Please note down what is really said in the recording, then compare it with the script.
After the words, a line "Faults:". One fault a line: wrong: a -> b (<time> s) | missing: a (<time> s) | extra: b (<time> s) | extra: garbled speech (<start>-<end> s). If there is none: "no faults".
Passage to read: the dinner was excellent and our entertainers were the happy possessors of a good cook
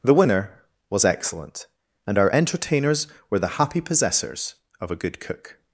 the winner was excellent and our entertainers were the happy possessors of a good cook
Faults:
wrong: dinner -> winner (0.1 s)